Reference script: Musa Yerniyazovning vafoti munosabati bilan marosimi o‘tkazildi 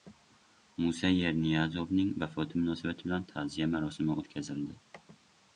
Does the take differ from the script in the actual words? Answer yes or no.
yes